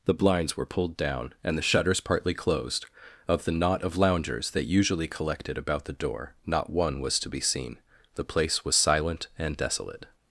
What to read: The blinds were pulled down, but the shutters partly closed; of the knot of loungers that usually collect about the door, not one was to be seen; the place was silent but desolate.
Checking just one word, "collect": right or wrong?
wrong